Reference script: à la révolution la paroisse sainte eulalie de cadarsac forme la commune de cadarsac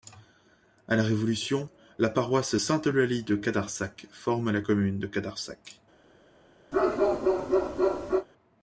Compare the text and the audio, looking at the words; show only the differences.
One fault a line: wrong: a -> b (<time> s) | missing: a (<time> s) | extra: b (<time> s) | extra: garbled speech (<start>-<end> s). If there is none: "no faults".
no faults